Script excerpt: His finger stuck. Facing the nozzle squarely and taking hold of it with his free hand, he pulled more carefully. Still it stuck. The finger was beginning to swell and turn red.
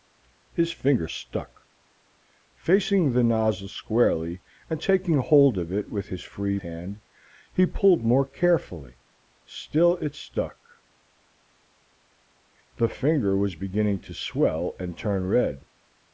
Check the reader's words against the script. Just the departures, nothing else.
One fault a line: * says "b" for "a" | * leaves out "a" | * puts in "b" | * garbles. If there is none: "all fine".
all fine